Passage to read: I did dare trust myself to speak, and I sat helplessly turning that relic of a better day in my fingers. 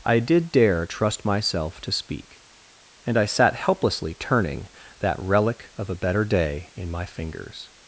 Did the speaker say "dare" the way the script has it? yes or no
yes